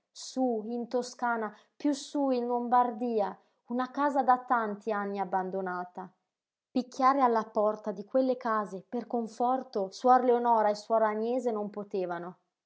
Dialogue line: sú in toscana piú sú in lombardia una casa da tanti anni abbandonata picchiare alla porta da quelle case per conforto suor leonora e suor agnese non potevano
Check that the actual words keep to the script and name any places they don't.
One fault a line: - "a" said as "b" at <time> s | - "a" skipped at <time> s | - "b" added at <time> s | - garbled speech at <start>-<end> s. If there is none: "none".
- "da" said as "di" at 7.9 s